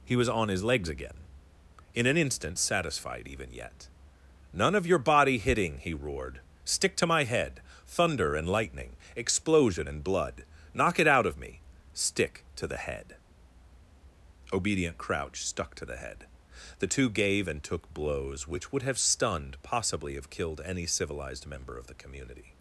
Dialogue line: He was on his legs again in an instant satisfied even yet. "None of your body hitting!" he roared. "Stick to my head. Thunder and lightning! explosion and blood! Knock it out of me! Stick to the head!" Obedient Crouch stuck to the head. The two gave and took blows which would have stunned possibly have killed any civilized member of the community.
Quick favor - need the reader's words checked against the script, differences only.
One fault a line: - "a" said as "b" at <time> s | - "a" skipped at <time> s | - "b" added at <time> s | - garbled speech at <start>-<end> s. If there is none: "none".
none